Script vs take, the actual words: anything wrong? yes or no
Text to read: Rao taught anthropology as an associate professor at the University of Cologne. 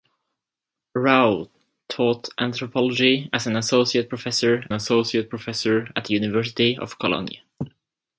yes